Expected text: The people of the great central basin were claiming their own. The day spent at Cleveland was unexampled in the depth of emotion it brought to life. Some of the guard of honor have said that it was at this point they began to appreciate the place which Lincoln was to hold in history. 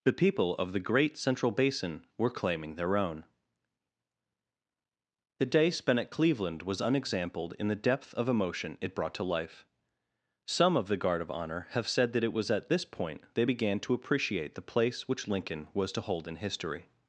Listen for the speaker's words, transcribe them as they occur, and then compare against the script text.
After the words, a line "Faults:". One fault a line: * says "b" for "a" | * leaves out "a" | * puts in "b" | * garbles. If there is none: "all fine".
The people of the great central basin were claiming their own. The day spent at Cleveland was unexampled in the depth of emotion it brought to life. Some of the guard of honor have said that it was at this point they began to appreciate the place which Lincoln was to hold in history.
Faults:
all fine